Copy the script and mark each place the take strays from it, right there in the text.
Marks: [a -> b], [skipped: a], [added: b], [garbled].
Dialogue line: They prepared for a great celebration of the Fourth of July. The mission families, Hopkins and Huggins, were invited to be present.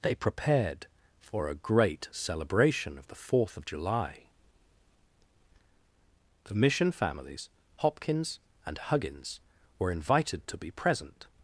They prepared for a great celebration of the Fourth of July. The mission families, Hopkins and Huggins, were invited to be present.